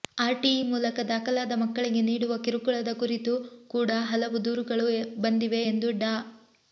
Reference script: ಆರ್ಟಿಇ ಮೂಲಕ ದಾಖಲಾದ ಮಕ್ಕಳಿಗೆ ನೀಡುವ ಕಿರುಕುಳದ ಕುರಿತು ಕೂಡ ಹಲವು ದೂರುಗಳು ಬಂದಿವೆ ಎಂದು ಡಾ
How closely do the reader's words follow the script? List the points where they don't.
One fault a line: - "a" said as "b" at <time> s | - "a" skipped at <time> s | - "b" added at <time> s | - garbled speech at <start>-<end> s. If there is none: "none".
none